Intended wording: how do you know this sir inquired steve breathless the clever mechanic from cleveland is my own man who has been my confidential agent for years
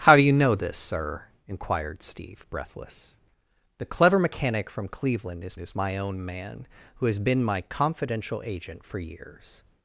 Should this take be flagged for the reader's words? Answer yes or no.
yes